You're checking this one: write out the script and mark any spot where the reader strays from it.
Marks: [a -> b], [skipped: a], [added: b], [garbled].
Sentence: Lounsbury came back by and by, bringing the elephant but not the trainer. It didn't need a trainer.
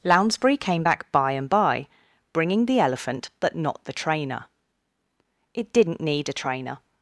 Lounsbury came back by and by, bringing the elephant but not the trainer. It didn't need a trainer.